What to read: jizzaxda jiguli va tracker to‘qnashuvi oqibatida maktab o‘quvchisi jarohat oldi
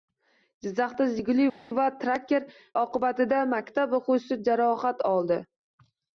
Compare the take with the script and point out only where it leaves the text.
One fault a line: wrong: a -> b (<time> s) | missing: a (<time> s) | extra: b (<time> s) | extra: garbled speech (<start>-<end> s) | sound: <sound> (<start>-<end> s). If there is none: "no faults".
missing: to‘qnashuvi (2.5 s)